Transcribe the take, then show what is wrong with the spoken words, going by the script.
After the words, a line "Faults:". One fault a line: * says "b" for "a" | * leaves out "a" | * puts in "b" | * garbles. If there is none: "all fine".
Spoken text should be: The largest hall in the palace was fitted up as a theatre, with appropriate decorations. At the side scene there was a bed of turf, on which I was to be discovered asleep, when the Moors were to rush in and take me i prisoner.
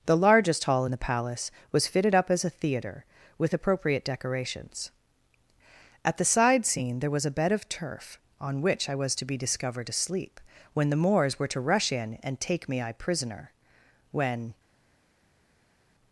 The largest hall in the palace was fitted up as a theatre, with appropriate decorations. At the side scene there was a bed of turf, on which I was to be discovered asleep, when the Moors were to rush in and take me i prisoner. When
Faults:
* puts in "When"